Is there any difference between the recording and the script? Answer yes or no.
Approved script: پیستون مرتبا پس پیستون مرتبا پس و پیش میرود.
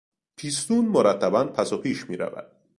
yes